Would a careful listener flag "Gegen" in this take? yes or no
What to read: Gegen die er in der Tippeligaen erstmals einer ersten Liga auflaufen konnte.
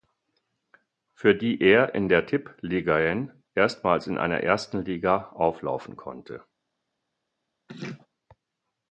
yes